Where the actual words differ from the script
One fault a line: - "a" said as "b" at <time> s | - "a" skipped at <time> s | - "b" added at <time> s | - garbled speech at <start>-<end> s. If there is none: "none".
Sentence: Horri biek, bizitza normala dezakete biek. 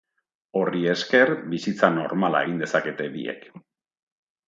- "biek" said as "esker" at 0.9 s
- "egin" added at 2.5 s